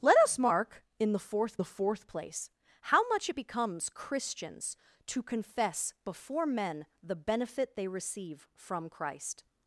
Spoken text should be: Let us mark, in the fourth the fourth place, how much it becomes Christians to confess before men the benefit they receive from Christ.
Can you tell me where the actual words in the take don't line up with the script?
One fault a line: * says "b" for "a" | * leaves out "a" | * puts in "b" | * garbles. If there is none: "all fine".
all fine